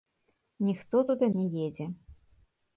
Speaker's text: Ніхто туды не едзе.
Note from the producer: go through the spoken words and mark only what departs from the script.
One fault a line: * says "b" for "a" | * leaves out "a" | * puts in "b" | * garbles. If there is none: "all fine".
all fine